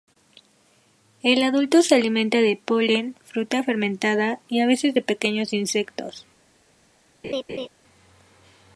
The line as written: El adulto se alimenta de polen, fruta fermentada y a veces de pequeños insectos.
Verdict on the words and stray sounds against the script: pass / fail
fail